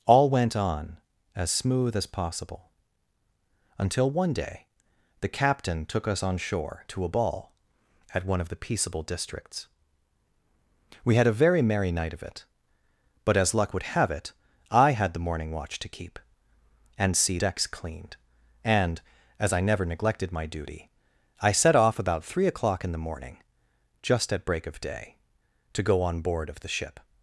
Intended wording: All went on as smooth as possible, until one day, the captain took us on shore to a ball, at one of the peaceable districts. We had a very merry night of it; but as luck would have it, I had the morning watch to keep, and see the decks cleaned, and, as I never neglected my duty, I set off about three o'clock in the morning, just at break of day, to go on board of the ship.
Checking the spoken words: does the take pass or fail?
fail